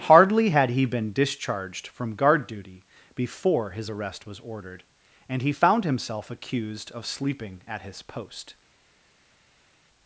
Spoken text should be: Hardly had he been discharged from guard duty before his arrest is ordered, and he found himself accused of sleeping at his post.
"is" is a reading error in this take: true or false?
true